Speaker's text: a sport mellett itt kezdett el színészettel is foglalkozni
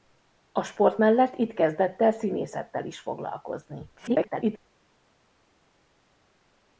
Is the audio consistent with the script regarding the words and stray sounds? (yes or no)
no